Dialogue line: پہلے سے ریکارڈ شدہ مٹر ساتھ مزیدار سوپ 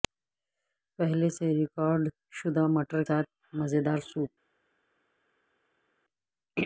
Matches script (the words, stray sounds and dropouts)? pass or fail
pass